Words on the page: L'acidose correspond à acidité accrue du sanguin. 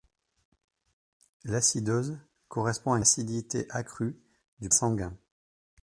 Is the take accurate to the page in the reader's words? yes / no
yes